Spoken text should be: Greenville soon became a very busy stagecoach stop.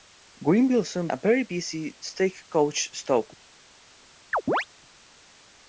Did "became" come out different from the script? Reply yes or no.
yes